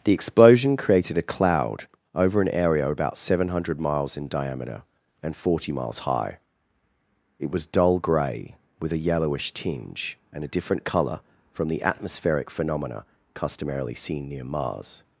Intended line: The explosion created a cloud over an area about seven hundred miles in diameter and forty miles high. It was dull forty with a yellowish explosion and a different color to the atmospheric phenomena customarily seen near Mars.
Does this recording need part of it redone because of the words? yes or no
yes